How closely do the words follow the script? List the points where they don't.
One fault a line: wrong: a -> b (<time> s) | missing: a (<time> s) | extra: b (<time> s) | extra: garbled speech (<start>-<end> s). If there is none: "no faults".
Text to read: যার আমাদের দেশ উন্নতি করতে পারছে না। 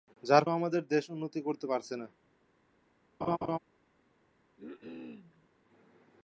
no faults